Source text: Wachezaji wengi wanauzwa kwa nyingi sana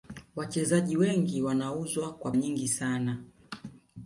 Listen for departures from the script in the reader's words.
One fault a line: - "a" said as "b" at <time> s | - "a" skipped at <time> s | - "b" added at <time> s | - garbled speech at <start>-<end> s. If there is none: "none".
none